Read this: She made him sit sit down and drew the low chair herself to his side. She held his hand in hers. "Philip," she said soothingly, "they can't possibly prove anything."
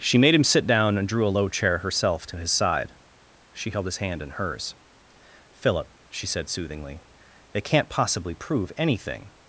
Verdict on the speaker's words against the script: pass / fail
fail